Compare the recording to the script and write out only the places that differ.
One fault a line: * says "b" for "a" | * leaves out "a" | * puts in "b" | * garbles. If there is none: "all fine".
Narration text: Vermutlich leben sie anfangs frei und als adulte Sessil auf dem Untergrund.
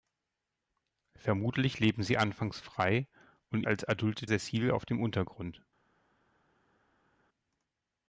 all fine